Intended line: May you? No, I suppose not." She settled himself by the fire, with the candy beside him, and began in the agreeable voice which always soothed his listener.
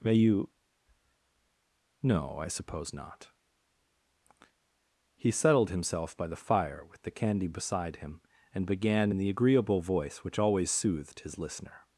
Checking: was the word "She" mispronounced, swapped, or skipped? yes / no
yes